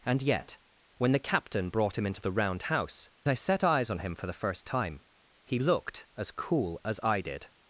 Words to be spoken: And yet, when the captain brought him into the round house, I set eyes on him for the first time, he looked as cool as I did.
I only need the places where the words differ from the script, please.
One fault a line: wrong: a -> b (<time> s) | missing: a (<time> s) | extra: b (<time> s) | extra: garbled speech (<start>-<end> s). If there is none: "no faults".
no faults